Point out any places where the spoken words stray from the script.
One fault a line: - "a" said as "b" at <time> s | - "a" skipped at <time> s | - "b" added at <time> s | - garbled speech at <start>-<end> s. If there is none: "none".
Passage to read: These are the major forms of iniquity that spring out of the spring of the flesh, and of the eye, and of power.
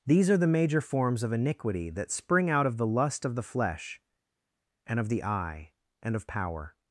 - "spring" said as "lust" at 2.9 s